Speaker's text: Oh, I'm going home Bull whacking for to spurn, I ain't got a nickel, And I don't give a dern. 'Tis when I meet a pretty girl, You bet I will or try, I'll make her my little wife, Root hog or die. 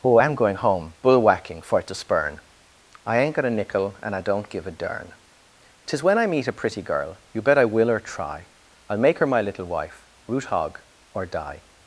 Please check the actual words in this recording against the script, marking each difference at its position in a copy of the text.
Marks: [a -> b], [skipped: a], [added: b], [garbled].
Oh, I'm going home Bull whacking for to spurn, I ain't got a nickel, And I don't give a dern. 'Tis when I meet a pretty girl, You bet I will or try, I'll make her my little wife, Root hog or die.